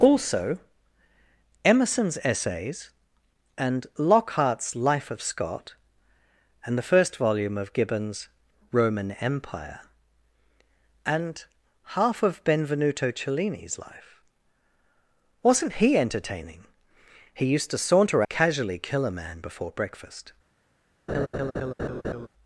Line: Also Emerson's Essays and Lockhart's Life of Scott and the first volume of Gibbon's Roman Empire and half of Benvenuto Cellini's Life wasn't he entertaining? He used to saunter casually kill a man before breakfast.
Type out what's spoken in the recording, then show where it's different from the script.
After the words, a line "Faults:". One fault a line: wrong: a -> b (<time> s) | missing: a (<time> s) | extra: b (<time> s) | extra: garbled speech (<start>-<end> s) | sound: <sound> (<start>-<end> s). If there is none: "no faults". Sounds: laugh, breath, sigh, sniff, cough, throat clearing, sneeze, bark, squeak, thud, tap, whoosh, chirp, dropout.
Also Emerson's Essays and Lockhart's Life of Scott and the first volume of Gibbon's Roman Empire and half of Benvenuto Cellini's Life wasn't he entertaining? He used to saunter casually kill a man before breakfast.
Faults:
sound: laugh (21.1-22.3 s)